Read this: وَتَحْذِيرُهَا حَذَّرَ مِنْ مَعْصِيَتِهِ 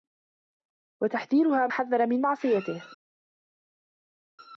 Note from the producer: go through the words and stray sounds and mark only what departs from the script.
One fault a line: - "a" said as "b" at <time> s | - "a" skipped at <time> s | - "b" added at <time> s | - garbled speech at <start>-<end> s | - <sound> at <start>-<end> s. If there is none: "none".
none